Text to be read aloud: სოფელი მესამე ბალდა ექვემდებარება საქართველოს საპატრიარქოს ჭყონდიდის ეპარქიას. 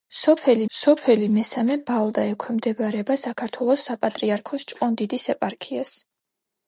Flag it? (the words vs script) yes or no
yes